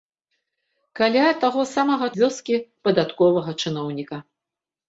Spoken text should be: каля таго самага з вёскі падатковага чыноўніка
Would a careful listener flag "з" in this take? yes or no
no